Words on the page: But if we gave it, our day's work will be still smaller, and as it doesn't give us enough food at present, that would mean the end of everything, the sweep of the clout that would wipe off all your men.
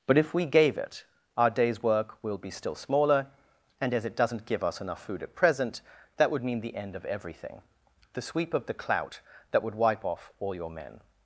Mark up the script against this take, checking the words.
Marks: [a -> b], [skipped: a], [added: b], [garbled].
But if we gave it, our day's work will be still smaller, and as it doesn't give us enough food at present, that would mean the end of everything, the sweep of the clout that would wipe off all your men.